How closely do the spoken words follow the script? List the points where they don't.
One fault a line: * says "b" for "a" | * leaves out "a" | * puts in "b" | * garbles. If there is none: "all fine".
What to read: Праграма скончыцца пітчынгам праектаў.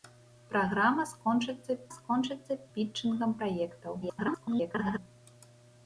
* puts in "скончыцца"
* garbles